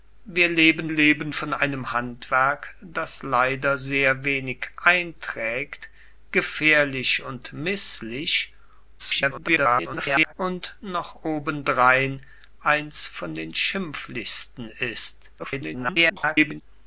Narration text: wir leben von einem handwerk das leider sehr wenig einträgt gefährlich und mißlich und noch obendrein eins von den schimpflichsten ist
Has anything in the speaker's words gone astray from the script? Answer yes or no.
yes